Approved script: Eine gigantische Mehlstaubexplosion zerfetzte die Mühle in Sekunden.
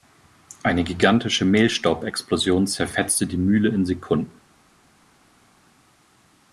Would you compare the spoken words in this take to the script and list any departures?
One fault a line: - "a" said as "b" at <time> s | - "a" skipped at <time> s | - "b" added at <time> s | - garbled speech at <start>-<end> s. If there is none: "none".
none